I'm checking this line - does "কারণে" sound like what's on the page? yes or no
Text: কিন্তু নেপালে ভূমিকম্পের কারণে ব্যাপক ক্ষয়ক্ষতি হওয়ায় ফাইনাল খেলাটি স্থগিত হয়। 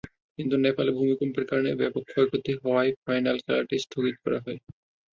yes